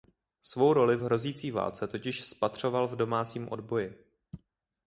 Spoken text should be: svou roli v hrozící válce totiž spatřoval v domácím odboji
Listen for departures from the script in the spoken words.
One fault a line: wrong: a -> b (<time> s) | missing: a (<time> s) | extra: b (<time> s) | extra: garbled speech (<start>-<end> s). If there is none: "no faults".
no faults